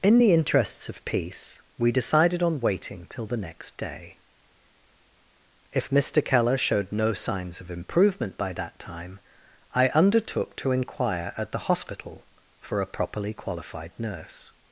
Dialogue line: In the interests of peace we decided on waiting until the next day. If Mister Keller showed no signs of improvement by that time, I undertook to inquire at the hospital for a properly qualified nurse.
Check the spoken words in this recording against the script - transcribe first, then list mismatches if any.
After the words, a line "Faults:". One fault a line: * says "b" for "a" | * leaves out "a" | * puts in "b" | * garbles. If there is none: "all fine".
In the interests of peace we decided on waiting till the next day. If Mister Keller showed no signs of improvement by that time, I undertook to inquire at the hospital for a properly qualified nurse.
Faults:
* says "till" for "until"